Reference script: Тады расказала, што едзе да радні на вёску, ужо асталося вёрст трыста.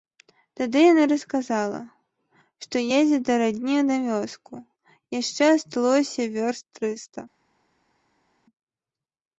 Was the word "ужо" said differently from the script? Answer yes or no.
yes